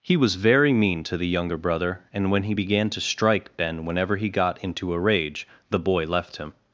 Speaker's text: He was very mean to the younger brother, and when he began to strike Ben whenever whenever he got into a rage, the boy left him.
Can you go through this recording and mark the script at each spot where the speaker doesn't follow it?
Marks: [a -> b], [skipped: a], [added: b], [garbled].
He was very mean to the younger brother, and when he began to strike Ben whenever [skipped: whenever] he got into a rage, the boy left him.